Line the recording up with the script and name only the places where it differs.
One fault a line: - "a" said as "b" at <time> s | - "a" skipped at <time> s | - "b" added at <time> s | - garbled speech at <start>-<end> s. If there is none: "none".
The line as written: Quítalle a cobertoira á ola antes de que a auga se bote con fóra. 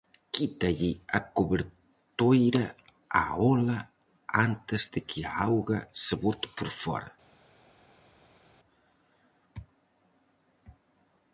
- "con" said as "por" at 6.6 s